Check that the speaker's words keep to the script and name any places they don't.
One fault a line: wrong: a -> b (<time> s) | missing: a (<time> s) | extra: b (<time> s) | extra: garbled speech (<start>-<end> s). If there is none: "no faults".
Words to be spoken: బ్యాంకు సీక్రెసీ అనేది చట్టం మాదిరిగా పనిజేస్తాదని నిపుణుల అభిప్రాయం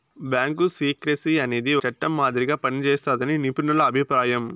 no faults